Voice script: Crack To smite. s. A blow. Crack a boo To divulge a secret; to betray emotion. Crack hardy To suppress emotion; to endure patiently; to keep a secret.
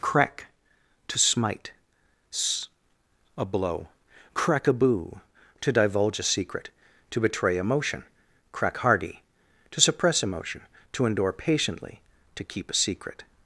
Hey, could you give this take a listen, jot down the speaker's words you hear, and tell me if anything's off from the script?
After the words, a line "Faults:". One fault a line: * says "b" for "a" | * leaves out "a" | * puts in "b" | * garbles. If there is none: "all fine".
Crack To smite. s. A blow. Crack a boo To divulge a secret; to betray emotion. Crack hardy To suppress emotion; to endure patiently; to keep a secret.
Faults:
all fine